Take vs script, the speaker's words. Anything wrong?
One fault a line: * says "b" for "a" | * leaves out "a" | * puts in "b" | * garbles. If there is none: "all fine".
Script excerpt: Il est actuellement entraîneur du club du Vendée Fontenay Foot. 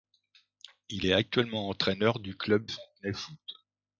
* leaves out "du Vendée"